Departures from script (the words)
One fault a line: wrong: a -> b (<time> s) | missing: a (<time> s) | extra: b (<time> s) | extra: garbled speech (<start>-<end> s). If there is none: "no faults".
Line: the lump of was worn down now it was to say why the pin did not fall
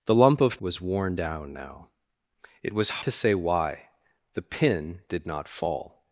no faults